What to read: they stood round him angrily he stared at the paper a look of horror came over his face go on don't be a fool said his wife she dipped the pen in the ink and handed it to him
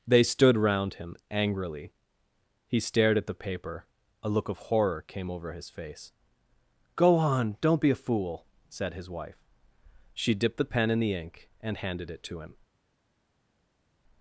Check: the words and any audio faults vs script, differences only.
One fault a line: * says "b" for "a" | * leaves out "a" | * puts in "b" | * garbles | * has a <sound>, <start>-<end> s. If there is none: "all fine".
all fine